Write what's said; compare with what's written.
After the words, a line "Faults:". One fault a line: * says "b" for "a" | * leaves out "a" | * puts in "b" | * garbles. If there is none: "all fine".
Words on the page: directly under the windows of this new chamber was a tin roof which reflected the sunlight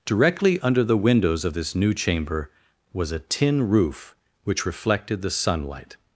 directly under the windows of this new chamber was a tin roof which reflected the sunlight
Faults:
all fine